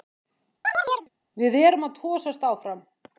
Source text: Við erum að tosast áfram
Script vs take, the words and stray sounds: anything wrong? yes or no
yes